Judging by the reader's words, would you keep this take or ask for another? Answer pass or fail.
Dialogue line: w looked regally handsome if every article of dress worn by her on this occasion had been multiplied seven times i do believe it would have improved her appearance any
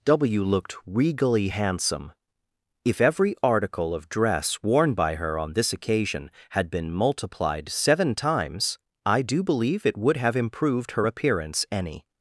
pass